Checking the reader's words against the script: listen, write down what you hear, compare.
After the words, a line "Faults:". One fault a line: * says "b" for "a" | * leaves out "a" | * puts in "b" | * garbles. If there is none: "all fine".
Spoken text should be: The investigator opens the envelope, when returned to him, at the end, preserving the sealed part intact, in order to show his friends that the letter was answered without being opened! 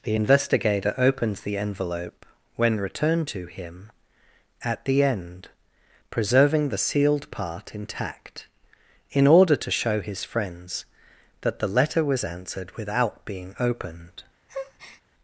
The investigator opens the envelope, when returned to him, at the end, preserving the sealed part intact, in order to show his friends that the letter was answered without being opened!
Faults:
all fine